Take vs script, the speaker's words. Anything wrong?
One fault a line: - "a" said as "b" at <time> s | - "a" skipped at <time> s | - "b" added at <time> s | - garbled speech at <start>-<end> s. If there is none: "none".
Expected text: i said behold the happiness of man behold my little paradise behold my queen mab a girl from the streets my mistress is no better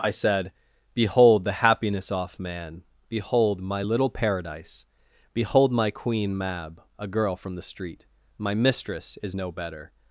- "of" said as "off" at 2.1 s
- "streets" said as "street" at 7.6 s